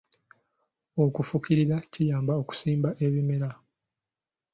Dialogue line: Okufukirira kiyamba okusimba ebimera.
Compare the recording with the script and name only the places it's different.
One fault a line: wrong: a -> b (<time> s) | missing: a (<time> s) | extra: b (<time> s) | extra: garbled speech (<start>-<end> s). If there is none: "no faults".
no faults